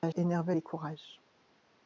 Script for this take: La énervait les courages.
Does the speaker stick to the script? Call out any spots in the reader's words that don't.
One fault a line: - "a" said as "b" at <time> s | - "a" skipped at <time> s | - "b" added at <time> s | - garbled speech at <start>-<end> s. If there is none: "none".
none